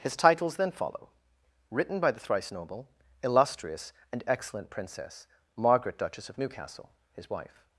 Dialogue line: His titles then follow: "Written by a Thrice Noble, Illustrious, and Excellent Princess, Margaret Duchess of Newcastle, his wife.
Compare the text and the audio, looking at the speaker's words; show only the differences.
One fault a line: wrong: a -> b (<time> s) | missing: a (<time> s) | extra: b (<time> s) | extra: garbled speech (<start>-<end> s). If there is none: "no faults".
wrong: a -> the (2.1 s)